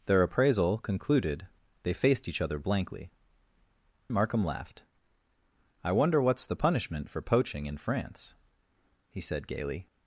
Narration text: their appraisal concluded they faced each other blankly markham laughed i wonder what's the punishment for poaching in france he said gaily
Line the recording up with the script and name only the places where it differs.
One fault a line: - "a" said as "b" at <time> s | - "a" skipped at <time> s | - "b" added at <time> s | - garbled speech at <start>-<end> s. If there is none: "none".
none